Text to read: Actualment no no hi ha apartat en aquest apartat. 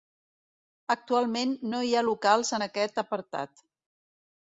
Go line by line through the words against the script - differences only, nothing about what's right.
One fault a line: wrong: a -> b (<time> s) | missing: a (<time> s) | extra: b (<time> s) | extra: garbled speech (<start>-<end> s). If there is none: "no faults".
missing: no (1.8 s)
wrong: apartat -> locals (2.1 s)